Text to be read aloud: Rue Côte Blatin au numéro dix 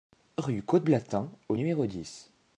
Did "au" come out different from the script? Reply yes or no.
no